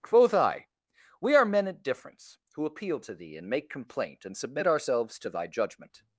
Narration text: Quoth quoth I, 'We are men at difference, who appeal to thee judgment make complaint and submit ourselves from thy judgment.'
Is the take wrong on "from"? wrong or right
wrong